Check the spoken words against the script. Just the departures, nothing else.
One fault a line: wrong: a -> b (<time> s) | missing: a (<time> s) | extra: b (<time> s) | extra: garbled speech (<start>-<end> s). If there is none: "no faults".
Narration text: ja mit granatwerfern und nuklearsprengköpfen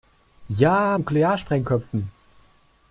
missing: mit granatwerfern und (1.0 s)